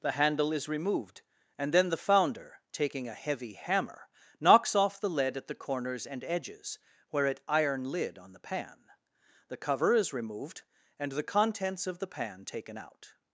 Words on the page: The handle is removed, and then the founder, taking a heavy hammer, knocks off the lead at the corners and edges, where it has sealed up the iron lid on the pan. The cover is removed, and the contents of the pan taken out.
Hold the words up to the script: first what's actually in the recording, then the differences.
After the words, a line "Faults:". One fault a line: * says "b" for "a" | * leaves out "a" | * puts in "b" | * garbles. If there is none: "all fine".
The handle is removed, and then the founder, taking a heavy hammer, knocks off the lead at the corners and edges, where it iron lid on the pan. The cover is removed, and the contents of the pan taken out.
Faults:
* leaves out "has sealed up the"